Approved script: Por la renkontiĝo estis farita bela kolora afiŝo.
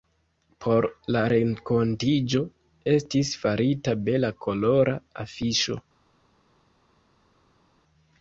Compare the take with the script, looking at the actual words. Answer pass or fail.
pass